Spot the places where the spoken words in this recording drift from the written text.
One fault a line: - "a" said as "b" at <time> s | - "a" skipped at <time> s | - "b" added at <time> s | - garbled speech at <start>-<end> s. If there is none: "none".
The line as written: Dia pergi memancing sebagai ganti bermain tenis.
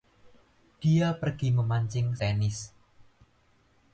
- "sebagai ganti bermain" skipped at 2.2 s